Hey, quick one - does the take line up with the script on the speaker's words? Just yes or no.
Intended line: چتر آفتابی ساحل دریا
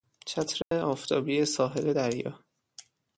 yes